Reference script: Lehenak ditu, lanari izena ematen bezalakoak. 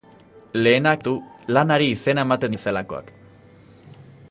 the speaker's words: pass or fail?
pass